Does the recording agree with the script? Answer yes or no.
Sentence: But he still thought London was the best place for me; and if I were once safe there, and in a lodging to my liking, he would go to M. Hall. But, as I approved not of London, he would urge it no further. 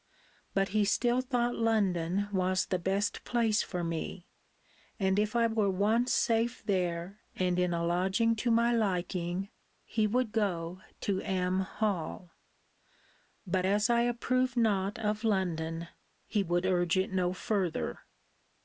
yes